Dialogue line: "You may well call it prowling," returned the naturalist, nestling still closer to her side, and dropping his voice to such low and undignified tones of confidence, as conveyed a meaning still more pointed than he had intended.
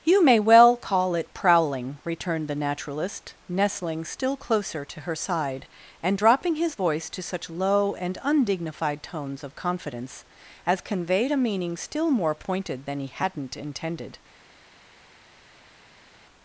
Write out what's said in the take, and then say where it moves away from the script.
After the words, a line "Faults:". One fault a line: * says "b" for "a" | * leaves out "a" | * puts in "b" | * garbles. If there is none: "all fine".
"You may well call it prowling," returned the naturalist, nestling still closer to her side, and dropping his voice to such low and undignified tones of confidence, as conveyed a meaning still more pointed than he hadn't intended.
Faults:
* says "hadn't" for "had"